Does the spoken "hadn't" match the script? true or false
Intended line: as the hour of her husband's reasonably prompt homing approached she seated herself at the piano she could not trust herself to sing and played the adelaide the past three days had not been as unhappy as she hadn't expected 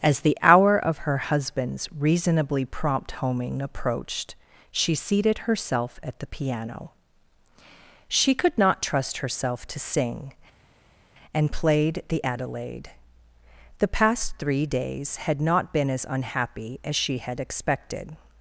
false